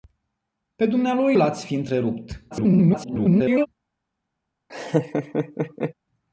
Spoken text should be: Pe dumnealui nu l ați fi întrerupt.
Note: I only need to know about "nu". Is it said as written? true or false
false